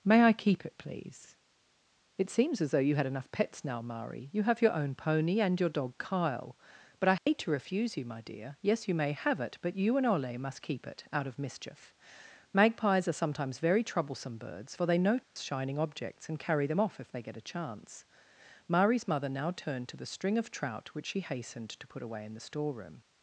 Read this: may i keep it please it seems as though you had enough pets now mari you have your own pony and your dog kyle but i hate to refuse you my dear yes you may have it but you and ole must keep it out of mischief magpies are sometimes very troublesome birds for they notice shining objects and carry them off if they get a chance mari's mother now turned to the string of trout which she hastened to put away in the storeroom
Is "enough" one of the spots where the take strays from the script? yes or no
no